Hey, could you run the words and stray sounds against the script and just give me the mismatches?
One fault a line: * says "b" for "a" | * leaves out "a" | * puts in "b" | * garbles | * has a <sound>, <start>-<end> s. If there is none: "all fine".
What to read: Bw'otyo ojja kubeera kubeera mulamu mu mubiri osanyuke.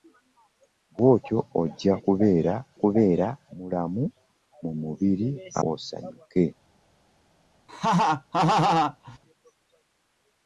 * has a laugh, 7.7-9.2 s